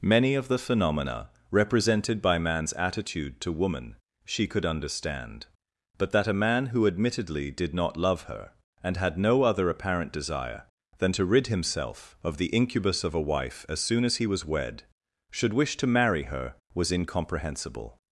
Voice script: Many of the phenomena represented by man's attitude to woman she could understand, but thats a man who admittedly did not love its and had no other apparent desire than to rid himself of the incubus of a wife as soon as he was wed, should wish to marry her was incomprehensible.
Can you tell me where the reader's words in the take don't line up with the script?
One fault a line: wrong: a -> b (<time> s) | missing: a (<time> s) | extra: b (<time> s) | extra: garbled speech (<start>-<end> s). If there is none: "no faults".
wrong: thats -> that (6.1 s)
wrong: its -> her (8.2 s)